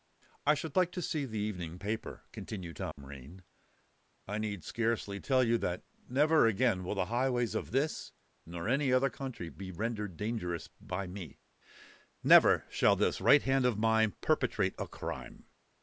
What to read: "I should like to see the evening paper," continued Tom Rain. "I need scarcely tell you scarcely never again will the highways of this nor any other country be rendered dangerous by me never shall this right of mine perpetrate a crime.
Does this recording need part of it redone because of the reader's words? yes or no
yes